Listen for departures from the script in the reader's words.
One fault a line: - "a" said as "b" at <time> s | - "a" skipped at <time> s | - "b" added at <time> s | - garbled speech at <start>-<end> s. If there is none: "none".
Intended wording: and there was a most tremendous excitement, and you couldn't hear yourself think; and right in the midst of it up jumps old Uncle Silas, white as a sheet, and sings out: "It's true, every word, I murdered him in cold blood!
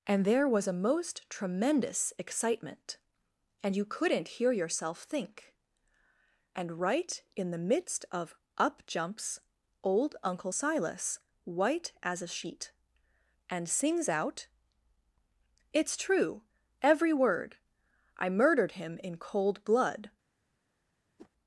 - "it" skipped at 8.4 s